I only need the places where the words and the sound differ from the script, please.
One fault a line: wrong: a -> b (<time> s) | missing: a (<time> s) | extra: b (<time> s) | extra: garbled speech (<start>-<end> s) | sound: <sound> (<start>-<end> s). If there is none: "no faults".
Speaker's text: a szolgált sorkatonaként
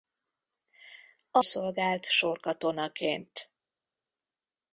no faults